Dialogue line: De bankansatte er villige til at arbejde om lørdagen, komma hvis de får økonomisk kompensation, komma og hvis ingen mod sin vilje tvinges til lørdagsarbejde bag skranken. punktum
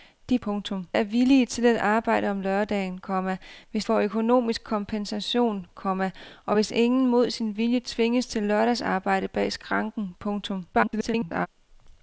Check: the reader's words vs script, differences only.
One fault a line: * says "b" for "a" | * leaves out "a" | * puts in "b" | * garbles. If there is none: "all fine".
* says "punktum" for "bankansatte"
* leaves out "de"
* garbles